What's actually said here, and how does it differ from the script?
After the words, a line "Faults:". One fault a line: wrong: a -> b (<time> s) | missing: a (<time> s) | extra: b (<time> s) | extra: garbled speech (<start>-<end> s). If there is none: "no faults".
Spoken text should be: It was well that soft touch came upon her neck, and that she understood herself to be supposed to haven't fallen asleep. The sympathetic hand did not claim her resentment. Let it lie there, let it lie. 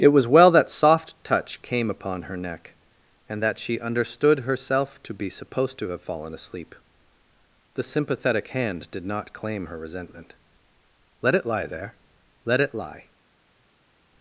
It was well that soft touch came upon her neck, and that she understood herself to be supposed to have fallen asleep. The sympathetic hand did not claim her resentment. Let it lie there, let it lie.
Faults:
wrong: haven't -> have (5.9 s)